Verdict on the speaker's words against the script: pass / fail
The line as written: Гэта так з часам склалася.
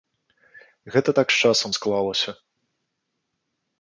pass